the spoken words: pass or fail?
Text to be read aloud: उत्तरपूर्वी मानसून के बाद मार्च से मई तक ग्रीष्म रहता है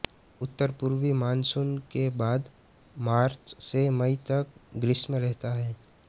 pass